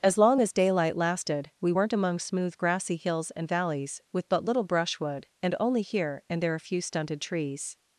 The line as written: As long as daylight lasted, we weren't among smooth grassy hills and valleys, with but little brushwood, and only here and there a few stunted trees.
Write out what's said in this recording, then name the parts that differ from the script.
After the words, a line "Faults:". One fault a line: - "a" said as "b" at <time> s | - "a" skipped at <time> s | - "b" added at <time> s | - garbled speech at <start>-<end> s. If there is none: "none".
As long as daylight lasted, we weren't among smooth grassy hills and valleys, with but little brushwood, and only here and there a few stunted trees.
Faults:
none